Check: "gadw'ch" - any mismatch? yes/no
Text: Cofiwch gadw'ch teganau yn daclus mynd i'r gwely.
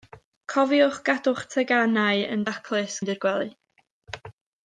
no